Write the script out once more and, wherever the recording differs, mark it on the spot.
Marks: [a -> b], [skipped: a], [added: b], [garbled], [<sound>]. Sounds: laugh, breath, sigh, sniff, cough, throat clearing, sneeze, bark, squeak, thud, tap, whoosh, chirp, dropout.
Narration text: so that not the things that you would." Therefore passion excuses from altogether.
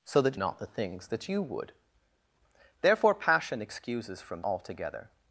so that not the things that you would." Therefore passion excuses from altogether.